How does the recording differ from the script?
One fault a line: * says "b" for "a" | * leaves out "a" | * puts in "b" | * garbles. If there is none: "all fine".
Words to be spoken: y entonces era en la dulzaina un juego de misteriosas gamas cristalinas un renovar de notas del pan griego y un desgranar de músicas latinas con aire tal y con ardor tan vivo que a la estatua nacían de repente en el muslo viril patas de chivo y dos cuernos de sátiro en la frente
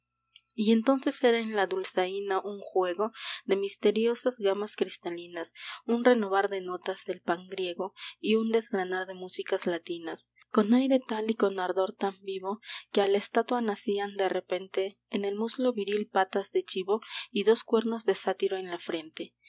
all fine